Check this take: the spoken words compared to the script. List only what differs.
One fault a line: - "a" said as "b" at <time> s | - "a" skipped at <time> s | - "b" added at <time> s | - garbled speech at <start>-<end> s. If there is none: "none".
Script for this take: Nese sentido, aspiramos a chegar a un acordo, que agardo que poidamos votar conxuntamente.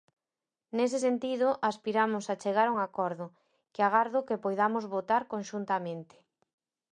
none